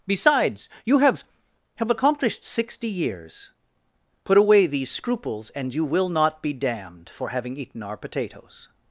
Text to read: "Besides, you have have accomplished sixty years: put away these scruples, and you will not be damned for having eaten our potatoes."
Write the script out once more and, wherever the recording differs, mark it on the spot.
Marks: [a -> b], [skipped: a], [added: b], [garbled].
"Besides, you have have accomplished sixty years: put away these scruples, and you will not be damned for having eaten our potatoes."